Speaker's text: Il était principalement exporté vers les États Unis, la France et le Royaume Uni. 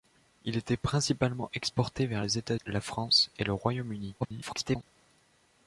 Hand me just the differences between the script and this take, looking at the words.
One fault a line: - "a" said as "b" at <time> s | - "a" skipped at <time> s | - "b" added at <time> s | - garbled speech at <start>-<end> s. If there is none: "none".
- "Unis" skipped at 2.5 s
- garbled speech at 4.2-4.8 s